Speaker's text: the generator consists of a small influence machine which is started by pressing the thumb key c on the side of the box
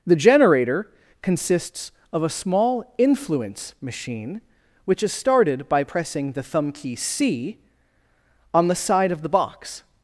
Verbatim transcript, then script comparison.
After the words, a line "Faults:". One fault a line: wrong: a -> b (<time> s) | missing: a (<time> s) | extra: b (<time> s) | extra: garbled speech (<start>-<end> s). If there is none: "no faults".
the generator consists of a small influence machine which is started by pressing the thumb key c on the side of the box
Faults:
no faults